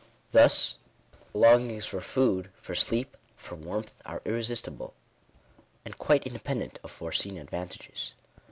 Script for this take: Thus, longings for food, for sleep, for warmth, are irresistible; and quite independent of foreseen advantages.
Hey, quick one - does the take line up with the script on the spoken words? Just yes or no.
yes